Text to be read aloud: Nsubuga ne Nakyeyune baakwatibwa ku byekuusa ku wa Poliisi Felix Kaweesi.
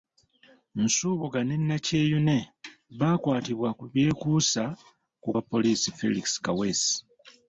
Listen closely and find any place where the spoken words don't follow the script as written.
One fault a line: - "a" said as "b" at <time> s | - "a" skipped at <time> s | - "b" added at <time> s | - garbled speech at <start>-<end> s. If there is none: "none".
none